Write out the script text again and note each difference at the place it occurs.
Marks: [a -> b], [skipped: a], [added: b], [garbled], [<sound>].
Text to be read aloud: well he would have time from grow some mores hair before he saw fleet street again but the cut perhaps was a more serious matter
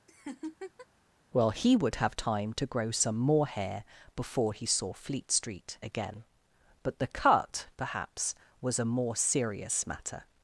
[laugh] well he would have time [from -> to] grow some [mores -> more] hair before he saw fleet street again but the cut perhaps was a more serious matter